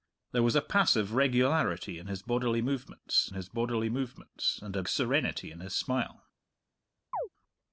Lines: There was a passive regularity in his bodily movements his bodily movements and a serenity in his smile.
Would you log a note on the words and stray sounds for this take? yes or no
yes